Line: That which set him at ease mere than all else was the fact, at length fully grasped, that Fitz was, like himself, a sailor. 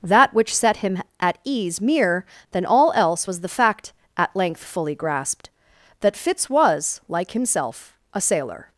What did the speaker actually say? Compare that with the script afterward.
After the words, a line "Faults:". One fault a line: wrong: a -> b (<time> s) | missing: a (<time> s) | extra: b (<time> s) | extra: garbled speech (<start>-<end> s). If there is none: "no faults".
That which set him at ease mere than all else was the fact, at length fully grasped, that Fitz was, like himself, a sailor.
Faults:
no faults